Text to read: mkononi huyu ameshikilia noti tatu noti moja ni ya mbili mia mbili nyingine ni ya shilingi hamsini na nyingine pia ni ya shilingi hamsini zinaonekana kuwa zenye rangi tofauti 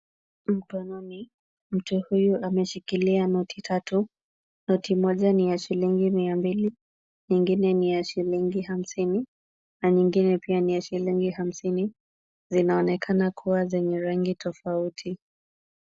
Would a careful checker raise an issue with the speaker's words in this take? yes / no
yes